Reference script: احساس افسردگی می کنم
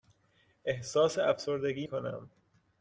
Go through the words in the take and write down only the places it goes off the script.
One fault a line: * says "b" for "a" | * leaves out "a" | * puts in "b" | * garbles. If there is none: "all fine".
* leaves out "می"